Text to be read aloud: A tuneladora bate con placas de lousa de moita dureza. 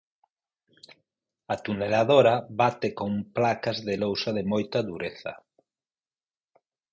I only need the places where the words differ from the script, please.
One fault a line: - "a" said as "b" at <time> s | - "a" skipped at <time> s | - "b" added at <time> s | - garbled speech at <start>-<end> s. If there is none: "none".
none